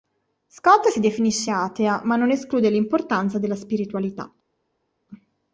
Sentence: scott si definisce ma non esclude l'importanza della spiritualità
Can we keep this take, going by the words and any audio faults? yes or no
no